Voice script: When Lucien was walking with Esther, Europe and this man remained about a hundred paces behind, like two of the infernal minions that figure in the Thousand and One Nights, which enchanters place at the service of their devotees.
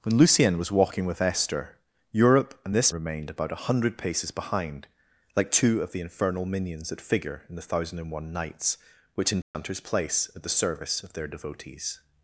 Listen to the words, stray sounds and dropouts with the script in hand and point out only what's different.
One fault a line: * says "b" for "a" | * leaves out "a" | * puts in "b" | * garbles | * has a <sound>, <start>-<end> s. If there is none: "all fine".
* leaves out "man"
* has a dropout, 9.4-9.5 s